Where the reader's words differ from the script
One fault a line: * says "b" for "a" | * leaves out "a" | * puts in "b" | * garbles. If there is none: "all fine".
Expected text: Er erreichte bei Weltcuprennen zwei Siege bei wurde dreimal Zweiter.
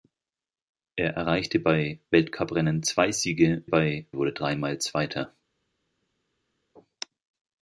all fine